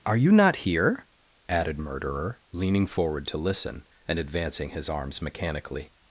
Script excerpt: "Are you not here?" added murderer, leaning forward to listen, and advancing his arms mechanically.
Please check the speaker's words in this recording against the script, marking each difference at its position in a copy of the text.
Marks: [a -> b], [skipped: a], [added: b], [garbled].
"Are you not here?" added murderer, leaning forward to listen, and advancing his arms mechanically.